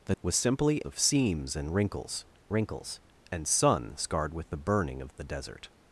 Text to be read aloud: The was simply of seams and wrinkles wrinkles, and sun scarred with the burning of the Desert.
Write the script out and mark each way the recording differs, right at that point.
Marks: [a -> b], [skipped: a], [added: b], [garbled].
The was simply of seams and wrinkles wrinkles, and sun scarred with the burning of the Desert.